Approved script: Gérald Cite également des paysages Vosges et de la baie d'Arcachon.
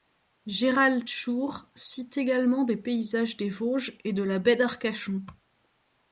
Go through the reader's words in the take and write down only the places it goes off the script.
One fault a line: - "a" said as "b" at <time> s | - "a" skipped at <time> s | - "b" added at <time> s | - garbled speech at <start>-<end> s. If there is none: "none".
- "Schurr" added at 1.1 s
- "des" added at 3.4 s